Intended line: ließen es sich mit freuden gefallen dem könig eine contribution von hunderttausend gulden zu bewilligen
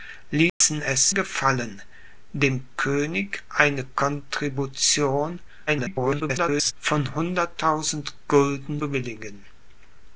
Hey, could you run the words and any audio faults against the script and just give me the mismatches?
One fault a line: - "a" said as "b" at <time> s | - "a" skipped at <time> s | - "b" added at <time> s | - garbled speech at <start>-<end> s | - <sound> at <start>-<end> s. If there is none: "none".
- dropout at 0.5-0.6 s
- "sich mit freuden" skipped at 1.1 s
- garbled speech at 5.7-6.7 s
- "zu" skipped at 8.8 s